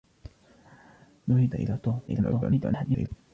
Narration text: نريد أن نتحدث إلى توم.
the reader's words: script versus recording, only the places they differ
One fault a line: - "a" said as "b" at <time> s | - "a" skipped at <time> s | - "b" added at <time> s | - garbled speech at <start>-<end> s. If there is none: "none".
- "أن نتحدث" skipped at 1.6 s
- garbled speech at 2.1-3.1 s